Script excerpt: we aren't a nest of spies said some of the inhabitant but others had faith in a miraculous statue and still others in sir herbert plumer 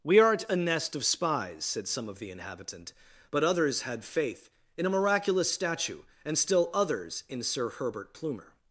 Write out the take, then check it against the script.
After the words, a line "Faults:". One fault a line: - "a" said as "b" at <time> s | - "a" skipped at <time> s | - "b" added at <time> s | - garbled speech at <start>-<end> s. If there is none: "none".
we aren't a nest of spies said some of the inhabitant but others had faith in a miraculous statue and still others in sir herbert plumer
Faults:
none